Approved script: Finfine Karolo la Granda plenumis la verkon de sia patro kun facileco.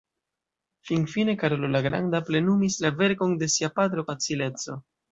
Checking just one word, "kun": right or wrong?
wrong